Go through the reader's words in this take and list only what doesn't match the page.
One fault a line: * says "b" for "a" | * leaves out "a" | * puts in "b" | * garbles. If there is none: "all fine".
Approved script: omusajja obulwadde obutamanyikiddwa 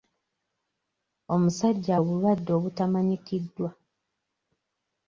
all fine